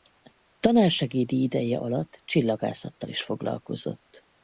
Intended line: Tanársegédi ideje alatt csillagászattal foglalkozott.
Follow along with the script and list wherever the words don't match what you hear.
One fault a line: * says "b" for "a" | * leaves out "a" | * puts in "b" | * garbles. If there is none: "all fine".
* puts in "is"